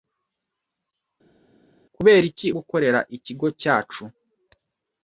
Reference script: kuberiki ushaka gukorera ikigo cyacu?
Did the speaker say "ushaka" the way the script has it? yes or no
no